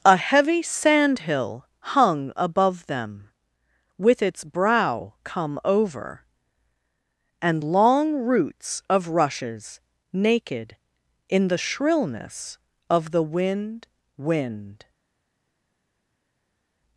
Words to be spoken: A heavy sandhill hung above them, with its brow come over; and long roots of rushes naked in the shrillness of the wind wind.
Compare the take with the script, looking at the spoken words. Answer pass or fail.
pass